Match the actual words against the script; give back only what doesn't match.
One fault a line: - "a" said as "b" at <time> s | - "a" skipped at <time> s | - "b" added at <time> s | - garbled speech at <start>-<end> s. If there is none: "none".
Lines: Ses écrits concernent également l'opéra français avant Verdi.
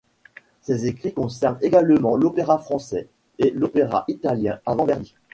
- "et l'opéra italien" added at 3.4 s